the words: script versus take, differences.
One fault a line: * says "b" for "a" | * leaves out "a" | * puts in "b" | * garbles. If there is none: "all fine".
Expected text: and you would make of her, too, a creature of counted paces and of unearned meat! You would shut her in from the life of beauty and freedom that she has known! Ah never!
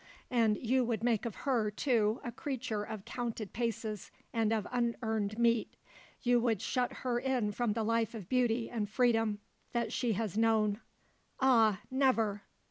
all fine